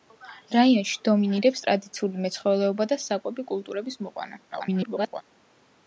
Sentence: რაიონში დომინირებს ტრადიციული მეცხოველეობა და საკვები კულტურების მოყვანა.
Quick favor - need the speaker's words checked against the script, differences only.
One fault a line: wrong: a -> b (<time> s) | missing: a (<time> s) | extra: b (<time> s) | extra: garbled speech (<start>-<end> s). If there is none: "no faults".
extra: garbled speech (4.5-5.2 s)